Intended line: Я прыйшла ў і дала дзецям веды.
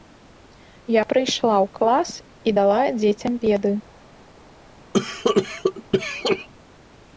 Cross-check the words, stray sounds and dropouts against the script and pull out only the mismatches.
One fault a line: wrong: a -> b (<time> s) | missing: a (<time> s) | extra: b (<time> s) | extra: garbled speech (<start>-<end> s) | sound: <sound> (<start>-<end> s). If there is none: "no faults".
extra: клас (1.8 s)
sound: cough (4.9-6.5 s)